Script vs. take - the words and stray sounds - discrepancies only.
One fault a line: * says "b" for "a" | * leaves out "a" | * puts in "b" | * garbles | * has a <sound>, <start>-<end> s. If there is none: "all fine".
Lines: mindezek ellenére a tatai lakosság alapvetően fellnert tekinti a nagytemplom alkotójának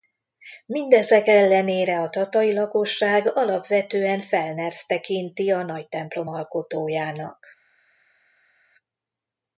all fine